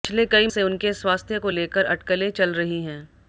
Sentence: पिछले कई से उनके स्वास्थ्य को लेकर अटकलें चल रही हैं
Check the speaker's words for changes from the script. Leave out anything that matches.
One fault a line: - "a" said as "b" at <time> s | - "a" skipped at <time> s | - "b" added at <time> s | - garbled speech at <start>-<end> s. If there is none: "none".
none